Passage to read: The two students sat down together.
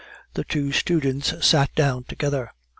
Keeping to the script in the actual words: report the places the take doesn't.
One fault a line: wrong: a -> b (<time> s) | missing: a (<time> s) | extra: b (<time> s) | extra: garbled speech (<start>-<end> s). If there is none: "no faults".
no faults